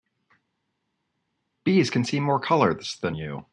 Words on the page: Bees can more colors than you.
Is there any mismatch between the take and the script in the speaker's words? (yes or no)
yes